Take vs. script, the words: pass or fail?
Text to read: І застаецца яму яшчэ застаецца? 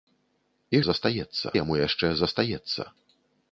pass